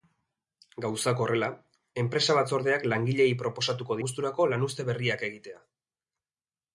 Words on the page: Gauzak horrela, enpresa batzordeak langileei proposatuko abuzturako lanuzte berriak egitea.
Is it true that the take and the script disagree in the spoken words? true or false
false